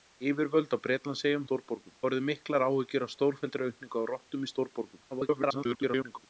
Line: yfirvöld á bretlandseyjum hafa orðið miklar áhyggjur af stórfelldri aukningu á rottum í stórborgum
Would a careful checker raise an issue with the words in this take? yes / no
yes